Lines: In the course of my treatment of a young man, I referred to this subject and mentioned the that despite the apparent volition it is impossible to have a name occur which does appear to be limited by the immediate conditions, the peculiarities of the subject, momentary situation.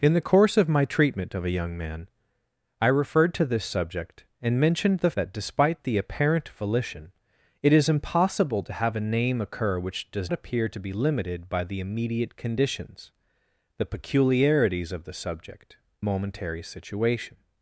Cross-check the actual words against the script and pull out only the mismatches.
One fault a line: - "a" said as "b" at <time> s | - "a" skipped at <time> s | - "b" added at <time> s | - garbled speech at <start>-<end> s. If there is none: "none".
none